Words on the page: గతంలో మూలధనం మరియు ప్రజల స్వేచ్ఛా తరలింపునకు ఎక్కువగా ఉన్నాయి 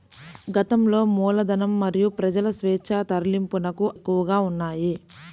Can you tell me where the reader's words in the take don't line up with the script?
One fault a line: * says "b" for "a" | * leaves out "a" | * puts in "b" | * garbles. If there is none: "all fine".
all fine